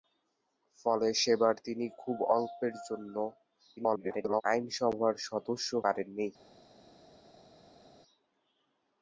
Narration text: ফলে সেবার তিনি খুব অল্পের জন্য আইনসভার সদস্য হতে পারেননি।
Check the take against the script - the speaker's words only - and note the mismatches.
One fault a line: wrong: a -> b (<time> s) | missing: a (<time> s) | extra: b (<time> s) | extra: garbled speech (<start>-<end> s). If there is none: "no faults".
extra: garbled speech (3.8-4.4 s)
missing: হতে (5.7 s)